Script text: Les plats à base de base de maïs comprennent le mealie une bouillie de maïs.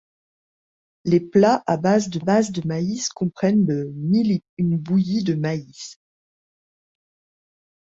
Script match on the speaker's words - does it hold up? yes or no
yes